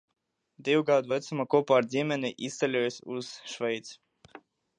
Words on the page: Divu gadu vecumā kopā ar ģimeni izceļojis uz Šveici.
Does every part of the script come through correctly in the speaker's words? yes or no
yes